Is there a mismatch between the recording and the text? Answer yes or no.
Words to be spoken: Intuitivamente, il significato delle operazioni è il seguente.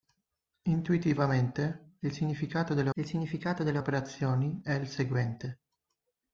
yes